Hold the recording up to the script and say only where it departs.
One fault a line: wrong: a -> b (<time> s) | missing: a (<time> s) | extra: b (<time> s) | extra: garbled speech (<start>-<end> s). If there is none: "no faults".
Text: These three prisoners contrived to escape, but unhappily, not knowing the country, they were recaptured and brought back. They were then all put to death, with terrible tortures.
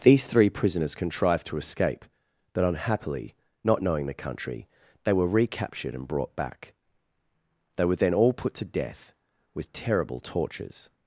no faults